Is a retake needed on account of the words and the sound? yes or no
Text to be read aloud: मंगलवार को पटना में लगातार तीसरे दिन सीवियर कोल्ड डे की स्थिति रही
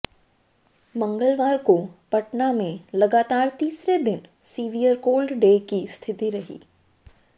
no